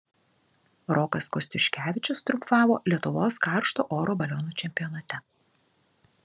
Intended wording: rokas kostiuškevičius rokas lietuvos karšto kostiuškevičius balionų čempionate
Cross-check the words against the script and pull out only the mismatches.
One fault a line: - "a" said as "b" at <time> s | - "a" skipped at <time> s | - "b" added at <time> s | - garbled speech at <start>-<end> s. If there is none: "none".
- "rokas" said as "triumfavo" at 2.3 s
- "kostiuškevičius" said as "oro" at 4.0 s